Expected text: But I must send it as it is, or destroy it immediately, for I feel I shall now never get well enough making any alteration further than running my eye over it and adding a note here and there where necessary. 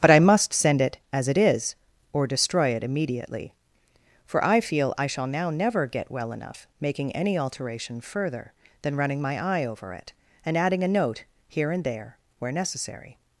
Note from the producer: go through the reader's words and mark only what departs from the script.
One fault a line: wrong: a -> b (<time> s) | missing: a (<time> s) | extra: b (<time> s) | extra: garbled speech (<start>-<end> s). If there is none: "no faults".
no faults